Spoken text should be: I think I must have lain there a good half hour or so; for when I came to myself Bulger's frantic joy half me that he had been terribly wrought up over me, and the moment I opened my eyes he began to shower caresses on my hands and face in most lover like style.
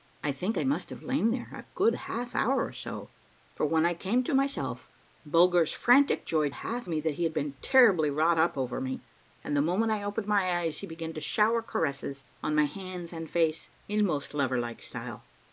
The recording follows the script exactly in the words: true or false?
true